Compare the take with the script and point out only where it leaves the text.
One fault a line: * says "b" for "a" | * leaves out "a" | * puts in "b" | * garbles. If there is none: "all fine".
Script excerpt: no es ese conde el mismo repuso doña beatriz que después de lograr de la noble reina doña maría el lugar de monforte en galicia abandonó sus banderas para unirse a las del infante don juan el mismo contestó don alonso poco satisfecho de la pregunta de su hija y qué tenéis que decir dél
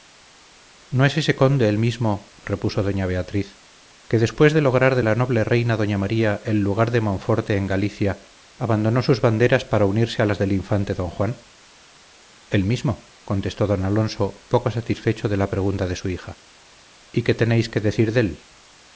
all fine